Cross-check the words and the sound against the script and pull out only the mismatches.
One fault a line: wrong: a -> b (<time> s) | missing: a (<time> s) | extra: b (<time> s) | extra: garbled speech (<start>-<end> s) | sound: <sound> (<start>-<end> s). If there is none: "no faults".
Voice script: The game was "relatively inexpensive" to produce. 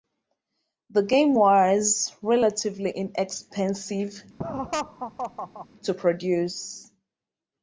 sound: laugh (4.4-5.7 s)